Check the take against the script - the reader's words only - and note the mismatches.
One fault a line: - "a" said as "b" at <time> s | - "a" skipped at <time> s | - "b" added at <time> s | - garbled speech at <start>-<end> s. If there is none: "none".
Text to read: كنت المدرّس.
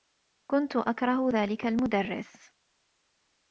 - "أكره ذلك" added at 0.8 s